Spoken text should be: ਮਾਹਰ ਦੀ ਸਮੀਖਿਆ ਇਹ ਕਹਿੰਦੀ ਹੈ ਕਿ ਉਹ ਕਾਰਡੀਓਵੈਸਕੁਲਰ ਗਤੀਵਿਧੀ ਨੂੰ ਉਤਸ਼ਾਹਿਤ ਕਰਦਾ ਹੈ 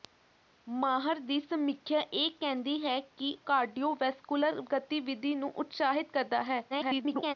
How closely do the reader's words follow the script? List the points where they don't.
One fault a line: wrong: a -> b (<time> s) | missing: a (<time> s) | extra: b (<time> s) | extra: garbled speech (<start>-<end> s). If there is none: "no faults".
missing: ਉਹ (3.3 s)
extra: garbled speech (6.7-7.3 s)